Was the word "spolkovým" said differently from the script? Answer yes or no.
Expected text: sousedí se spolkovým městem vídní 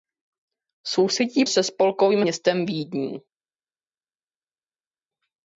no